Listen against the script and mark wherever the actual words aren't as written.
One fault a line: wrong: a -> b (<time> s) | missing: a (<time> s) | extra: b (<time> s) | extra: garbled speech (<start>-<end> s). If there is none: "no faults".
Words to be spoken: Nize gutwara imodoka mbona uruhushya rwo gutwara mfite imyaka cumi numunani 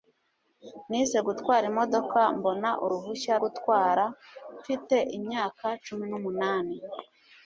missing: rwo (3.3 s)